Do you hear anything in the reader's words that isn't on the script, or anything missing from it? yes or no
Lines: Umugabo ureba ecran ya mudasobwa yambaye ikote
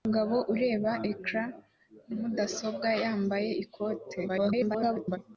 yes